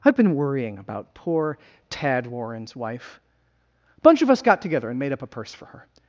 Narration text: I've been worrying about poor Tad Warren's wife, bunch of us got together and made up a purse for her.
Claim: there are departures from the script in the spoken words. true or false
true